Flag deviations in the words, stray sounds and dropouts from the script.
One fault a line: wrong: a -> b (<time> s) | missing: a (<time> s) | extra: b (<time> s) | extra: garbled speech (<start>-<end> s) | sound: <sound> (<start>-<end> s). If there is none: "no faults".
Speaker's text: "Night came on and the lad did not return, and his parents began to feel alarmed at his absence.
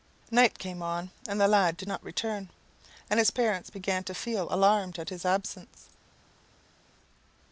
no faults